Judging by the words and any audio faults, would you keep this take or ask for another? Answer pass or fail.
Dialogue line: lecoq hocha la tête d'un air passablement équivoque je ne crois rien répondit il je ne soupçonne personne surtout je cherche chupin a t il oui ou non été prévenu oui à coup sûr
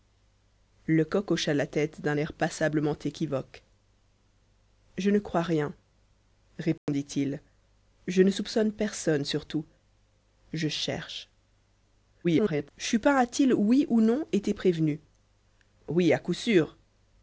fail